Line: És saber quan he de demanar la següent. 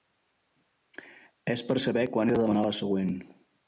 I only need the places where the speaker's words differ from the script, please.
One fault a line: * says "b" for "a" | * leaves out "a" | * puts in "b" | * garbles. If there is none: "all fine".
* puts in "per"